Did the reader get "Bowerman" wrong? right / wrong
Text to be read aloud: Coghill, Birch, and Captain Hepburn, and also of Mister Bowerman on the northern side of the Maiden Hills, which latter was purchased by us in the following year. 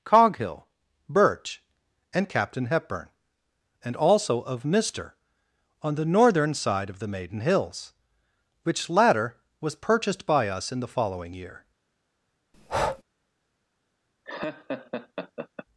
wrong